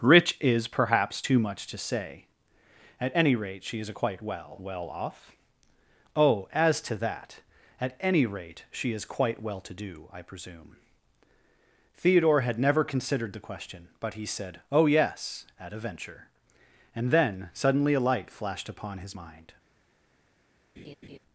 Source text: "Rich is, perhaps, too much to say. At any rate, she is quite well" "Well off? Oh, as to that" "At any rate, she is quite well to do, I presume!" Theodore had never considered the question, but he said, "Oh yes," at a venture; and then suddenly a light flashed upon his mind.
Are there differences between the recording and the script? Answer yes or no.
no